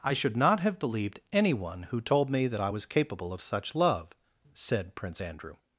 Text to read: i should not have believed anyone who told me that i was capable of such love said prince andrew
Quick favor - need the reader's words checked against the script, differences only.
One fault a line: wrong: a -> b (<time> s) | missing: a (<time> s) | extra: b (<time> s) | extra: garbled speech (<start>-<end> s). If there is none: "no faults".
no faults